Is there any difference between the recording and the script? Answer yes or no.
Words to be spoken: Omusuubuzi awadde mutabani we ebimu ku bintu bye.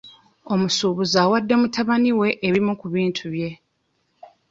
no